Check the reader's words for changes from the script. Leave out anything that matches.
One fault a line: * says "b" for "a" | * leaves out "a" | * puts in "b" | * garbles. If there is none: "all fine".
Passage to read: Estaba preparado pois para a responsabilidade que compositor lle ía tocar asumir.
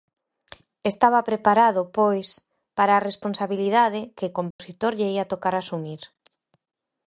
all fine